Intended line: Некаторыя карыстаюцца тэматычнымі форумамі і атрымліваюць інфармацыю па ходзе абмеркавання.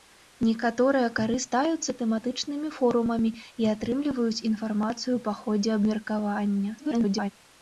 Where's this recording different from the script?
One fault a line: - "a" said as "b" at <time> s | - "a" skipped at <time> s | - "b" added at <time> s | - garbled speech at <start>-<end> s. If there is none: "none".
- garbled speech at 6.8-7.3 s